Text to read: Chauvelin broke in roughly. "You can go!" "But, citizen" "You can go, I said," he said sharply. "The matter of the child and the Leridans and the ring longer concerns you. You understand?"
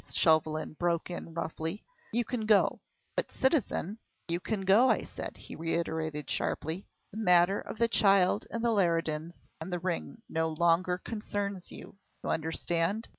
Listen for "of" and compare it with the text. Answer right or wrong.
right